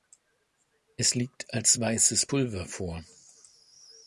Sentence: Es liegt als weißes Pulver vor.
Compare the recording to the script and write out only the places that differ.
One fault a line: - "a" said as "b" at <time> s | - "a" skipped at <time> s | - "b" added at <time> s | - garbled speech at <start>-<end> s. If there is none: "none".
none